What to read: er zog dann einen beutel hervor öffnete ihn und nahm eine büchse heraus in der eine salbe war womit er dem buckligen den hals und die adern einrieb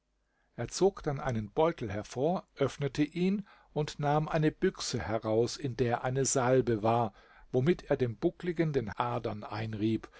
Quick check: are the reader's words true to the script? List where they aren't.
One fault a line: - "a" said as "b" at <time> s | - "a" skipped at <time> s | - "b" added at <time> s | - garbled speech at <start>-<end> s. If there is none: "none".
- "hals und die" skipped at 9.0 s